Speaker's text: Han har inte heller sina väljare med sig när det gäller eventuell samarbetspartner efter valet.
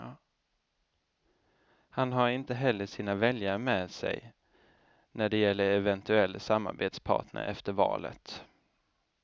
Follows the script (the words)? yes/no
yes